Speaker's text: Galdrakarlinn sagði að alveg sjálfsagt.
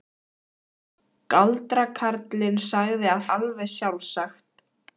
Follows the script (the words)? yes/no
yes